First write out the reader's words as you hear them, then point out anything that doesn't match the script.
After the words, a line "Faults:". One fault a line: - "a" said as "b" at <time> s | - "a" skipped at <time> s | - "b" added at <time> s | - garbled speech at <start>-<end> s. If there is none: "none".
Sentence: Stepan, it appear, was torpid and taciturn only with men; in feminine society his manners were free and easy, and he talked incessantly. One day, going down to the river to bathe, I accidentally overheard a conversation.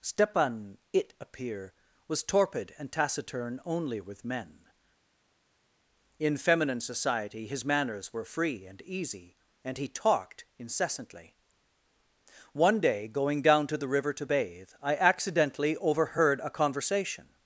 Stepan, it appear, was torpid and taciturn only with men; in feminine society his manners were free and easy, and he talked incessantly. One day, going down to the river to bathe, I accidentally overheard a conversation.
Faults:
none